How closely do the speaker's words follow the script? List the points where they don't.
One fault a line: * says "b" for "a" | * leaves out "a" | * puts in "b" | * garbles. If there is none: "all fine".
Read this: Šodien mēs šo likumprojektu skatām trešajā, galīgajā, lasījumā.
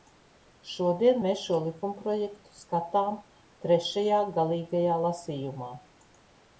all fine